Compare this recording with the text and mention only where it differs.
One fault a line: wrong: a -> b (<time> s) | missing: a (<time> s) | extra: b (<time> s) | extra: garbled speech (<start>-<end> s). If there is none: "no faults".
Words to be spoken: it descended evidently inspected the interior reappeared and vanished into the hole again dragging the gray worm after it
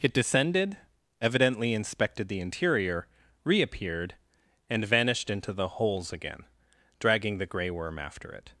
wrong: hole -> holes (5.7 s)